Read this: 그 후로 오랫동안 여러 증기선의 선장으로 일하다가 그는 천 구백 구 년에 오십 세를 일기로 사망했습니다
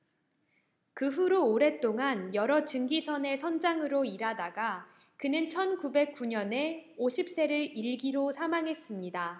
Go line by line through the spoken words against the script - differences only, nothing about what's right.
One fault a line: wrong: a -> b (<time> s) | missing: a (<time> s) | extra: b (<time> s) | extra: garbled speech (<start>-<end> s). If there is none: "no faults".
no faults